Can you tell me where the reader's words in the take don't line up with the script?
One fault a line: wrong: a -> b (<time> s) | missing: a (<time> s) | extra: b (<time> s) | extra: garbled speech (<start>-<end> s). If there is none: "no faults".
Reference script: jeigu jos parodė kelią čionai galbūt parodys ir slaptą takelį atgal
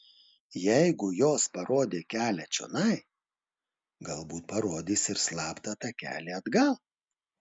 no faults